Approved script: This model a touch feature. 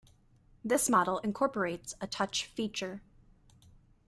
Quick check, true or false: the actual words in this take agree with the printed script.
false